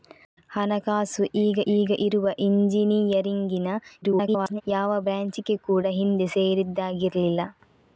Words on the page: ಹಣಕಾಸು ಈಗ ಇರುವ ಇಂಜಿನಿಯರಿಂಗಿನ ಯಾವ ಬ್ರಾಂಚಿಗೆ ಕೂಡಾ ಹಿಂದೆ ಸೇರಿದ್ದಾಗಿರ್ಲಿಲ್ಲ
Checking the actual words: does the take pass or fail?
fail